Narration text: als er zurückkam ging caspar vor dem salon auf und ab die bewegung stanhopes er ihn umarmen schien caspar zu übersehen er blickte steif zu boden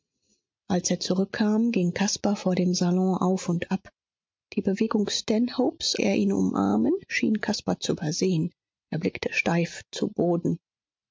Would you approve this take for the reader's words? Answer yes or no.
yes